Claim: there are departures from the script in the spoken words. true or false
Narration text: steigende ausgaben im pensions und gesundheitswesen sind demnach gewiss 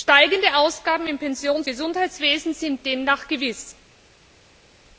true